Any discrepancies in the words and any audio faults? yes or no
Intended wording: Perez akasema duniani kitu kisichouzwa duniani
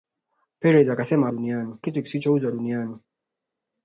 no